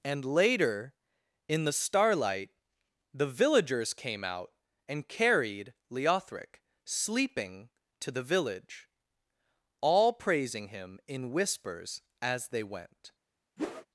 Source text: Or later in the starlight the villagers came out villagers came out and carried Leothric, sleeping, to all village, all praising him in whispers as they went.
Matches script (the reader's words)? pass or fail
fail